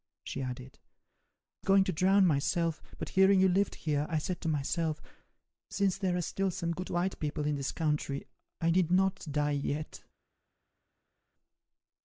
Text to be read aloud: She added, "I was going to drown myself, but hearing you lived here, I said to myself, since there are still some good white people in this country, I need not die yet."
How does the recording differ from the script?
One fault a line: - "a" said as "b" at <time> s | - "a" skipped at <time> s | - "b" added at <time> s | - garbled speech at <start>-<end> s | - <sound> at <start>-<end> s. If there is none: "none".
- "was" skipped at 1.7 s